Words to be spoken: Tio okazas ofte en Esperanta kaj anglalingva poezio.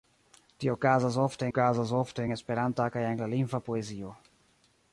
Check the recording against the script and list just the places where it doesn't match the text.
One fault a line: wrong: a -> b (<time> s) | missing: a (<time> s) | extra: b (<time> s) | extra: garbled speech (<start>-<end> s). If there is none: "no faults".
extra: okazas ofte (1.5 s)